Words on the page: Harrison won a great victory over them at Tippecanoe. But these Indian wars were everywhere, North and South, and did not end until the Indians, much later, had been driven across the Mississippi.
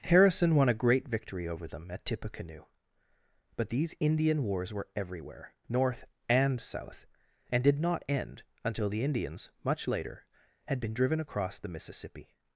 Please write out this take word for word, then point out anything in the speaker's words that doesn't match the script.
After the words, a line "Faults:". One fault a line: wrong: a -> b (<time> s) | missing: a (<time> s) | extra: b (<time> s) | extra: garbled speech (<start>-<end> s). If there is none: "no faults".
Harrison won a great victory over them at Tippecanoe. But these Indian wars were everywhere, North and South, and did not end until the Indians, much later, had been driven across the Mississippi.
Faults:
no faults